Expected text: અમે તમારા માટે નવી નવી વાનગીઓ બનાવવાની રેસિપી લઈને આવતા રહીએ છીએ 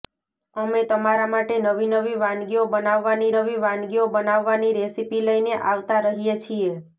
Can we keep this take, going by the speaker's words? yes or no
no